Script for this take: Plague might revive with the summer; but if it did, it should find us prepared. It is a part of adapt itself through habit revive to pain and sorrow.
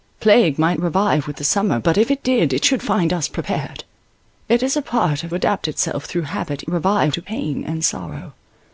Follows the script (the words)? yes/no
yes